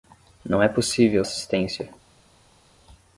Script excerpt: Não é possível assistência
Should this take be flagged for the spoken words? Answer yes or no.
no